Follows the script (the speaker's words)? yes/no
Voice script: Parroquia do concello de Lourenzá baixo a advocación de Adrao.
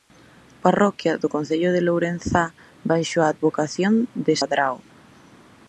yes